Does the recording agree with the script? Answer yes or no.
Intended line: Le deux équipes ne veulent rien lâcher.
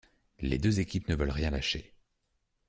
no